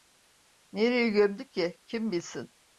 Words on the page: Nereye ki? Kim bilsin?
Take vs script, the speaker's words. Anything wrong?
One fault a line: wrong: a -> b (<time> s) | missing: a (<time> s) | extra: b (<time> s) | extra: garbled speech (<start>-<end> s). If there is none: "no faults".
extra: gömdü (1.1 s)